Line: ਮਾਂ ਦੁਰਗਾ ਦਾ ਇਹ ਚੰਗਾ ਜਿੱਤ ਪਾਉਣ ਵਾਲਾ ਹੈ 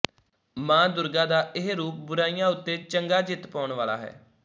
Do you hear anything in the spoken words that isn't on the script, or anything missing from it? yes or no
yes